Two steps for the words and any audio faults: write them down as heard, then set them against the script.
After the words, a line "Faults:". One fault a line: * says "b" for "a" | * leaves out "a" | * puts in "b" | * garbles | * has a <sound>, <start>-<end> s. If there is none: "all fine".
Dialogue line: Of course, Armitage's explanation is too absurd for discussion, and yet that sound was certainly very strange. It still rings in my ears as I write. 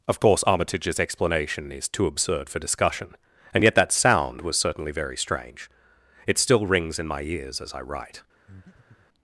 Of course, Armitage's explanation is too absurd for discussion, and yet that sound was certainly very strange. It still rings in my ears as I write.
Faults:
* has a breath, 8.5-9.1 s